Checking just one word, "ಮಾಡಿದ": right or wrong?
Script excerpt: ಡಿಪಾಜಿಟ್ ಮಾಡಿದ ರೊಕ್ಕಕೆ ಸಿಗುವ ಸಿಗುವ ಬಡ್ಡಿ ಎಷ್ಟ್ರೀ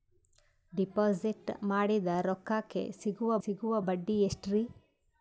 right